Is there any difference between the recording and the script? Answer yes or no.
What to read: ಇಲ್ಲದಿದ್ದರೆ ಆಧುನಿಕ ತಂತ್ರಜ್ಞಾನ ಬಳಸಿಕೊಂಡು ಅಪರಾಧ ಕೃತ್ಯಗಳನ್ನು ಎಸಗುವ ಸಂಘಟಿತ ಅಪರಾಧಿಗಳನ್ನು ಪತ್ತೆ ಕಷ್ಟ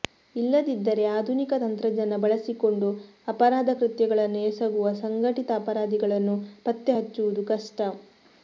yes